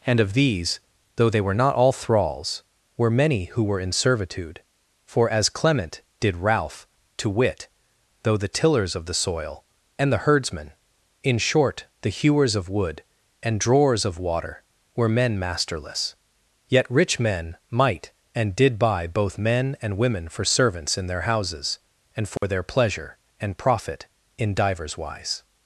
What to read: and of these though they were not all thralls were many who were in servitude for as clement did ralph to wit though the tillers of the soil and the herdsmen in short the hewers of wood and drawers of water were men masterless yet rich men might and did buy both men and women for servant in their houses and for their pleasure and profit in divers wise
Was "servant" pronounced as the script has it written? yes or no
no